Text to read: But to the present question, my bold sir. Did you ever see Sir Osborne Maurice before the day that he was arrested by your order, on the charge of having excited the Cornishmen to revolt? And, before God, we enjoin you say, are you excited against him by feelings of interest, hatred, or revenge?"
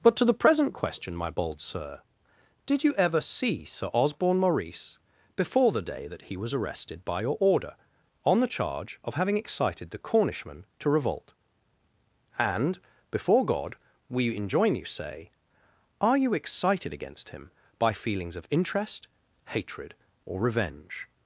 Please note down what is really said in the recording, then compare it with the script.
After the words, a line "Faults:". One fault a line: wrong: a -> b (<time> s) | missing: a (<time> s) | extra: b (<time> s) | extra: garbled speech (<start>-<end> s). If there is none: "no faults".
But to the present question, my bold sir. Did you ever see Sir Osborne Maurice before the day that he was arrested by your order, on the charge of having excited the Cornishmen to revolt? And, before God, we enjoin you say, are you excited against him by feelings of interest, hatred, or revenge?"
Faults:
no faults